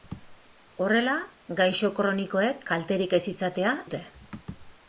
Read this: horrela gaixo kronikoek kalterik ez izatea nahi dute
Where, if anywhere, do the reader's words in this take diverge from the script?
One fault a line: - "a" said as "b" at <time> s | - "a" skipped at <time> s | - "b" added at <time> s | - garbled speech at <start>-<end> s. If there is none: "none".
- "nahi" skipped at 3.8 s